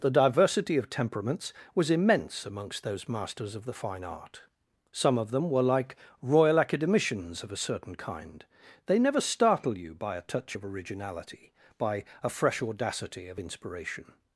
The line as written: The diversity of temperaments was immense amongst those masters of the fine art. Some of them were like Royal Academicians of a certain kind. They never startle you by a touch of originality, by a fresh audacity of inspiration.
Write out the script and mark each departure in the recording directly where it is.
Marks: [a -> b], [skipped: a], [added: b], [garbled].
The diversity of temperaments was immense amongst those masters of the fine art. Some of them were like Royal Academicians of a certain kind. They never startle you by a touch of originality, by a fresh audacity of inspiration.